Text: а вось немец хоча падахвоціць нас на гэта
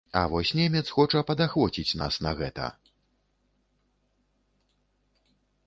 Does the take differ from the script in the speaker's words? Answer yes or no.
no